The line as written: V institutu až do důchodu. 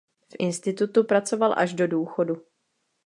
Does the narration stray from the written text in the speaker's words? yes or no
yes